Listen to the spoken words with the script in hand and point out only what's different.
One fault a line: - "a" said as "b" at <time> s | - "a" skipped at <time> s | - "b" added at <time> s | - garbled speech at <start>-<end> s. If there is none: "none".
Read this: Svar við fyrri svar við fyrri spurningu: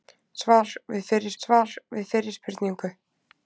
none